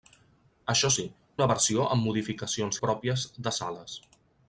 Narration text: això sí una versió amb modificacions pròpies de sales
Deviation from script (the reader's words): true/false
false